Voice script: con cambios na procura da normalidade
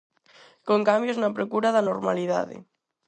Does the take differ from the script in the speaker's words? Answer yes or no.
no